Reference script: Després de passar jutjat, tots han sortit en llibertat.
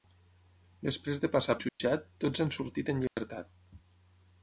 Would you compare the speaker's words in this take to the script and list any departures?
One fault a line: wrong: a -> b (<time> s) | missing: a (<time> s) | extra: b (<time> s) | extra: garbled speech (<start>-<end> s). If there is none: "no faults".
no faults